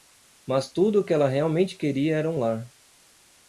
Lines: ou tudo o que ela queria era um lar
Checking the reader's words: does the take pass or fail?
fail